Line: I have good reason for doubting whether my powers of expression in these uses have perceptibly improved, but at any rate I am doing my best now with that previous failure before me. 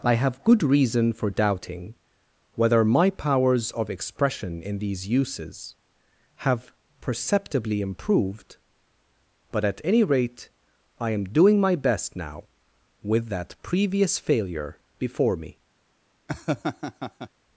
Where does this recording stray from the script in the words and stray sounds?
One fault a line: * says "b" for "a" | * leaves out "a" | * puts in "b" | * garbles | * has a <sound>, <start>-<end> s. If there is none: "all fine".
* has a laugh, 16.3-17.3 s